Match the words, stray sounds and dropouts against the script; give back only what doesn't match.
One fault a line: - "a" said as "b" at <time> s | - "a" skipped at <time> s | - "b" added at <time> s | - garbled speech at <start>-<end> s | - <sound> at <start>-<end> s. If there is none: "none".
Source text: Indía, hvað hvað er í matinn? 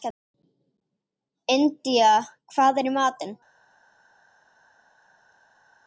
- "hvað" skipped at 2.8 s